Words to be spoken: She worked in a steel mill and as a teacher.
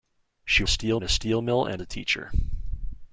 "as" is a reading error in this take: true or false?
true